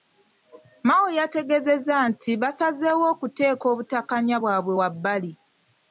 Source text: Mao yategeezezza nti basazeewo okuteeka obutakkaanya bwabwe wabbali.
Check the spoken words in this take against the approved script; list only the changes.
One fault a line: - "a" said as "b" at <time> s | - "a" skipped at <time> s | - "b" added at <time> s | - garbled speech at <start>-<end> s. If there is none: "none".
none